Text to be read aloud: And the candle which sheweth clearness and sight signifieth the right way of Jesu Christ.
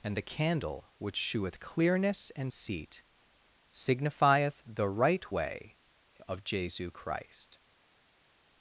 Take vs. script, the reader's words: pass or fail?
fail